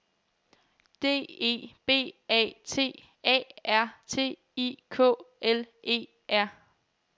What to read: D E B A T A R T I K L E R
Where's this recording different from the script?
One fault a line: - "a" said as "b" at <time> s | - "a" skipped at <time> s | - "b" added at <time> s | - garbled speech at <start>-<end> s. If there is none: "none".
none